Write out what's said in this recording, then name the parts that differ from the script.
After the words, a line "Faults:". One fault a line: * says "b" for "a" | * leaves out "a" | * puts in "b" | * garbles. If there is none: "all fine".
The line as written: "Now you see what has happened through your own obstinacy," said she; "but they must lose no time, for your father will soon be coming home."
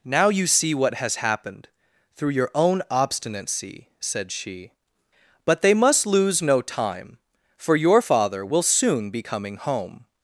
"Now you see what has happened through your own obstinacy," said she; "but they must lose no time, for your father will soon be coming home."
Faults:
all fine